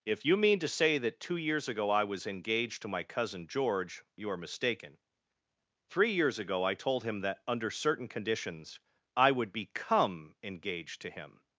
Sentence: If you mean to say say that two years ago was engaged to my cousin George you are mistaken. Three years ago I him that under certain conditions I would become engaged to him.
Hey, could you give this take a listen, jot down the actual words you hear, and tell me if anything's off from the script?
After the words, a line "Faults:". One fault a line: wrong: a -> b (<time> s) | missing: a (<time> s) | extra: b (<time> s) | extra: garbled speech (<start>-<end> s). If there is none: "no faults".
If you mean to say that two years ago I was engaged to my cousin George you are mistaken. Three years ago I told him that under certain conditions I would become engaged to him.
Faults:
missing: say (1.0 s)
extra: I (1.9 s)
extra: told (6.7 s)